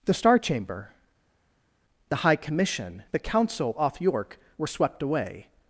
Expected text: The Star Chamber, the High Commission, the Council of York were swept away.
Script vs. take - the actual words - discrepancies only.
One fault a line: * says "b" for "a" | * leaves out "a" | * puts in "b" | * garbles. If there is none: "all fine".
* says "off" for "of"